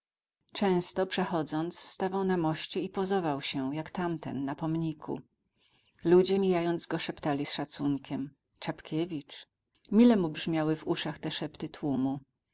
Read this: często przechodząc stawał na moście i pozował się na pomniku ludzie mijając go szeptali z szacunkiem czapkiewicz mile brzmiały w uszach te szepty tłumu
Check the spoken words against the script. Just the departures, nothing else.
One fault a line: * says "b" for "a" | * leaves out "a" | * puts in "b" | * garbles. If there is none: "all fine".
* puts in "jak tamten"
* puts in "mu"